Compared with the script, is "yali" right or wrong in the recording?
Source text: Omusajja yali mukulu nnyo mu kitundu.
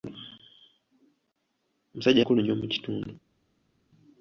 wrong